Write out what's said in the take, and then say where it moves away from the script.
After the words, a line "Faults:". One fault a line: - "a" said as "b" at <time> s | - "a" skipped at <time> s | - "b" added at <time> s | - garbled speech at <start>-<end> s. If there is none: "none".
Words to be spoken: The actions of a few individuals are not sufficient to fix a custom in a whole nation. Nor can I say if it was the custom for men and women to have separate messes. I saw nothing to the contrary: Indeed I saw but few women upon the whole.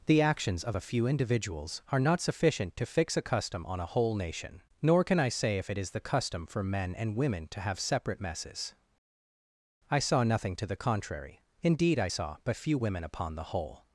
The actions of a few individuals are not sufficient to fix a custom on a whole nation. Nor can I say if it is the custom for men and women to have separate messes. I saw nothing to the contrary: Indeed I saw but few women upon the whole.
Faults:
- "in" said as "on" at 3.7 s
- "was" said as "is" at 5.8 s